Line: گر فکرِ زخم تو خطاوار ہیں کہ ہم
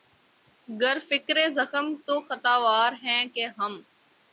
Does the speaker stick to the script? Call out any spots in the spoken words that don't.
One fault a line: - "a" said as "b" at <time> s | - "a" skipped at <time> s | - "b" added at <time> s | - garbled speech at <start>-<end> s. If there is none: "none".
none